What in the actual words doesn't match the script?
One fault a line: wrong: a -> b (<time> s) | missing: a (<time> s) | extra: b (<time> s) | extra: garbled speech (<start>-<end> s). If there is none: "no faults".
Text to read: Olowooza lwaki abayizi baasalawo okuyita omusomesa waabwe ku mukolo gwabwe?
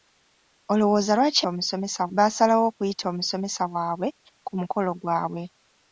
wrong: abayizi -> omusomesa (1.5 s)